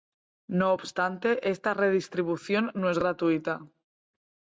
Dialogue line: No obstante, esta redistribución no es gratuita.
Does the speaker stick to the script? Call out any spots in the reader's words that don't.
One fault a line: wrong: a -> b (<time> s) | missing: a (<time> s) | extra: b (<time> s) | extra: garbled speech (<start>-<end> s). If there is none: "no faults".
no faults